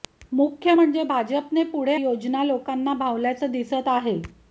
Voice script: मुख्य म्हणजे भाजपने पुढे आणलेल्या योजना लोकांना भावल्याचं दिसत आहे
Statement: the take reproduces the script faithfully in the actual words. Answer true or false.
false